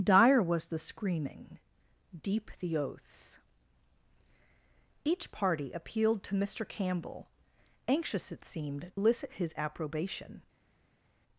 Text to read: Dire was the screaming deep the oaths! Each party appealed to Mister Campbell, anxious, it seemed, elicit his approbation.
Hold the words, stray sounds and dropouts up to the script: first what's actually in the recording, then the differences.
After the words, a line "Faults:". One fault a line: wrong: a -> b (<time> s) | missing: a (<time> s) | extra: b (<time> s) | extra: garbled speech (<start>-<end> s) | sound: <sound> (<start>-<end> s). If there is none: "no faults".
Dire was the screaming deep the oaths! Each party appealed to Mister Campbell, anxious, it seemed, elicit his approbation.
Faults:
no faults